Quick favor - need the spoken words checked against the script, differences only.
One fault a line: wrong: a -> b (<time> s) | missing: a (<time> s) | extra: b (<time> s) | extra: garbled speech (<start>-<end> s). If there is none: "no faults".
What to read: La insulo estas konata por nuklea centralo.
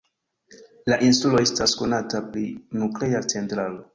wrong: por -> pri (2.3 s)